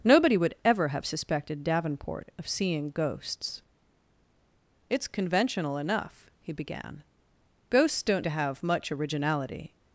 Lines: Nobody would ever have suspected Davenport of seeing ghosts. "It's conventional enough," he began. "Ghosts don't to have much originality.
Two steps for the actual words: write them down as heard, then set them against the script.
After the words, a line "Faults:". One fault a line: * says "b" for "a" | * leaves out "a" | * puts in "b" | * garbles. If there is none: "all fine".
Nobody would ever have suspected Davenport of seeing ghosts. "It's conventional enough," he began. "Ghosts don't to have much originality.
Faults:
all fine